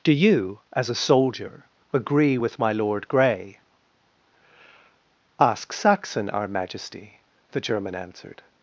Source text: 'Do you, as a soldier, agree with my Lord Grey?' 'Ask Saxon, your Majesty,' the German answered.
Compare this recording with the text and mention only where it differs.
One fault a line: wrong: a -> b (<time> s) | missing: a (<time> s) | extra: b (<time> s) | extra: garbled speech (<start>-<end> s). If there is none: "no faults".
wrong: your -> our (6.3 s)